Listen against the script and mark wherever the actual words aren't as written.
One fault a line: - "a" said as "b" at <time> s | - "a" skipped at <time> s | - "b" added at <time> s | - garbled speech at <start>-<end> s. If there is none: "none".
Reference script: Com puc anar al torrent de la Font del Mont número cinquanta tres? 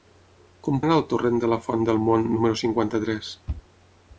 - "puc" skipped at 0.8 s